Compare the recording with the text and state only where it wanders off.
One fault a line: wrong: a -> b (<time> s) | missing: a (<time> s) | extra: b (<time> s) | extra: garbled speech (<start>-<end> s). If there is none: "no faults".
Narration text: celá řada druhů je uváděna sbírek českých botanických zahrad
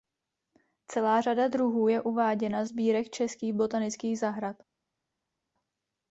no faults